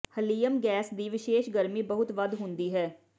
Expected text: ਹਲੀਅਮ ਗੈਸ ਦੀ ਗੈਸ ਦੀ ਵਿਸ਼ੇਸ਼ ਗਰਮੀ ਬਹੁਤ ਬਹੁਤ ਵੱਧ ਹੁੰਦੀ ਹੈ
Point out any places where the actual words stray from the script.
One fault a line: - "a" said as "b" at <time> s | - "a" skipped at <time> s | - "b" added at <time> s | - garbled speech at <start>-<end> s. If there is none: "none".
- "ਗੈਸ ਦੀ" skipped at 1.1 s
- "ਬਹੁਤ" skipped at 2.1 s